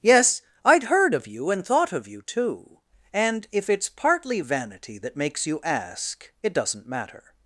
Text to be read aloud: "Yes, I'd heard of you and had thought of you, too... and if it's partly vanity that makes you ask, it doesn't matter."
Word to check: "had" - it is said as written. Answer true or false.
false